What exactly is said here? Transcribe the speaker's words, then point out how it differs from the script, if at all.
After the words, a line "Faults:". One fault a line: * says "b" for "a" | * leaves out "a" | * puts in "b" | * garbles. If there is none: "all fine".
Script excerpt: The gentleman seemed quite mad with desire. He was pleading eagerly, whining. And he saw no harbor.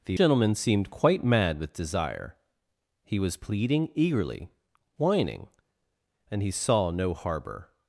The gentleman seemed quite mad with desire. He was pleading eagerly, whining. And he saw no harbor.
Faults:
all fine